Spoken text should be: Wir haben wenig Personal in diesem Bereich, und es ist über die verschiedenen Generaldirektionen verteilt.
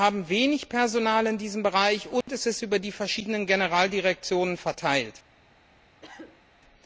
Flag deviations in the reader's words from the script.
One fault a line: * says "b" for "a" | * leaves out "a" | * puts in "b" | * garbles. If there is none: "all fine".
all fine